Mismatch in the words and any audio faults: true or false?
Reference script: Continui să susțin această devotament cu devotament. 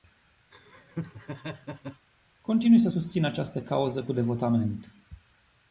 true